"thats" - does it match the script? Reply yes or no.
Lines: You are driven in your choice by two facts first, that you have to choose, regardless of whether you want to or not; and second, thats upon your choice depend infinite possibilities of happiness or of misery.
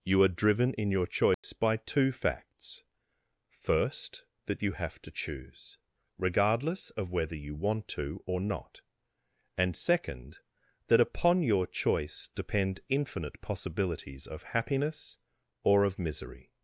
no